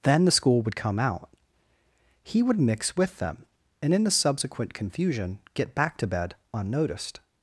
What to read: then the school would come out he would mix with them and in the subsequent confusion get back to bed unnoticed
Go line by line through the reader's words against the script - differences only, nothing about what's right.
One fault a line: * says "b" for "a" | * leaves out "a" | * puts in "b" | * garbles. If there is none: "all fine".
all fine